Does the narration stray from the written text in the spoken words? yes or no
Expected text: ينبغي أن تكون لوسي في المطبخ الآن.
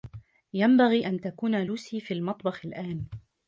no